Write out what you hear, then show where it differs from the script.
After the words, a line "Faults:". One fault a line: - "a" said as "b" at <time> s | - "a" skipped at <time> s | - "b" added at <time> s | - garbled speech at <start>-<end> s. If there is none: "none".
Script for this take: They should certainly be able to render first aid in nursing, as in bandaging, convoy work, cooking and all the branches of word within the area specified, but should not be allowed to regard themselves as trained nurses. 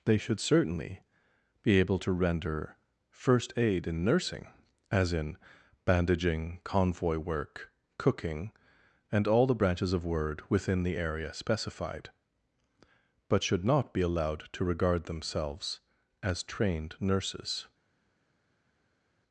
They should certainly be able to render first aid in nursing, as in bandaging, convoy work, cooking and all the branches of word within the area specified, but should not be allowed to regard themselves as trained nurses.
Faults:
none